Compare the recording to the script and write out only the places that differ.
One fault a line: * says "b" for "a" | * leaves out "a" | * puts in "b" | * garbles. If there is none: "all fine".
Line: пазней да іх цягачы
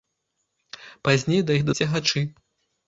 all fine